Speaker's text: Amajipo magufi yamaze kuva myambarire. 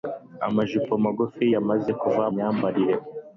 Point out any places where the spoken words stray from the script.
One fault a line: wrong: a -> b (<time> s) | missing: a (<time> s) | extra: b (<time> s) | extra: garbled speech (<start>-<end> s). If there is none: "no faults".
no faults